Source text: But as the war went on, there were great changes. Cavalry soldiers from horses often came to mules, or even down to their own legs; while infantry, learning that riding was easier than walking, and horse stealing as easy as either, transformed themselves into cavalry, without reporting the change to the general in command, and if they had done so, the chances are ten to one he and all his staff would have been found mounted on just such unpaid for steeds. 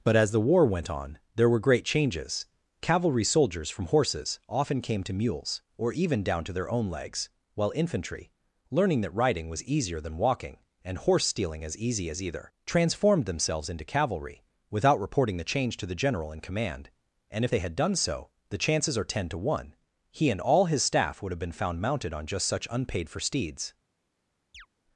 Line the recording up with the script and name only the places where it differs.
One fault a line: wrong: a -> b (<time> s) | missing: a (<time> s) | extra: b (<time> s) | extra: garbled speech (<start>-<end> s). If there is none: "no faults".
no faults